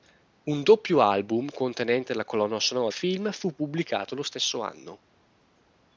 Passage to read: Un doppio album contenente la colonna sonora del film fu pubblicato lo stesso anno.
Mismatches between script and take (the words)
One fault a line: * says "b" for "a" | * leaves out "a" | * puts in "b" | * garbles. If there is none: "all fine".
* leaves out "del"